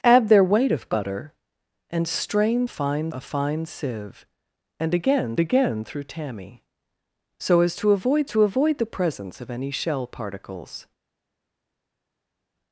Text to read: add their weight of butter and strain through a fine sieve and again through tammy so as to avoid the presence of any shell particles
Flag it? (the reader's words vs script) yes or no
yes